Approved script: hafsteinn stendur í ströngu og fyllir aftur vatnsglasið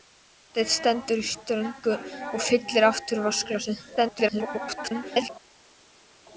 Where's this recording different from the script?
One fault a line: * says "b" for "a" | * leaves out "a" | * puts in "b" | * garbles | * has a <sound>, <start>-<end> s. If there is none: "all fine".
* garbles